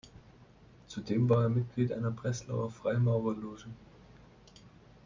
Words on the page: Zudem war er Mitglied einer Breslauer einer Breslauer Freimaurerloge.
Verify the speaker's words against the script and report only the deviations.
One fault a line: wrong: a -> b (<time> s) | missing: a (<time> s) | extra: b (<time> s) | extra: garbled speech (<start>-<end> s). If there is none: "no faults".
missing: einer Breslauer (2.7 s)